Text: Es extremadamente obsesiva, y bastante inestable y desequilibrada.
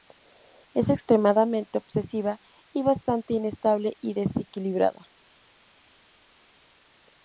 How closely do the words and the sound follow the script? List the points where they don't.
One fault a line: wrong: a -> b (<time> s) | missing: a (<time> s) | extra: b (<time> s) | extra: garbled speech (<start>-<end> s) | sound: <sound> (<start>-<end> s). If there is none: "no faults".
no faults